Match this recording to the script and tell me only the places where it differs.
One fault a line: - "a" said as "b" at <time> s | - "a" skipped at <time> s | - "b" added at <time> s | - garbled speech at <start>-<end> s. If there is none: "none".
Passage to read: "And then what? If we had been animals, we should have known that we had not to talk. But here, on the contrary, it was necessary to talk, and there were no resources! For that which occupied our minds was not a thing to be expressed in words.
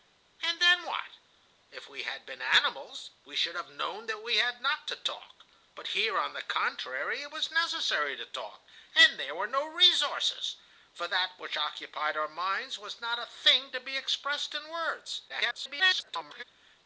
- garbled speech at 15.3-16.4 s